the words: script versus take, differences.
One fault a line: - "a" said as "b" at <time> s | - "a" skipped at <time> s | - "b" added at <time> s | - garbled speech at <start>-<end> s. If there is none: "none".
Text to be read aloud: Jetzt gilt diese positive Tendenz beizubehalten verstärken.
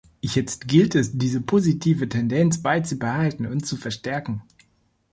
- "es" added at 0.9 s
- "und zu" added at 3.5 s